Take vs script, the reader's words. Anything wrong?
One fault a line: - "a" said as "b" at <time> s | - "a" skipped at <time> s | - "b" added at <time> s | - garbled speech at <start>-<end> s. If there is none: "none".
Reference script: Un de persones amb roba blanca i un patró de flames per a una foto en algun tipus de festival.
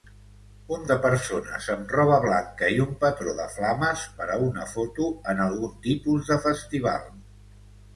none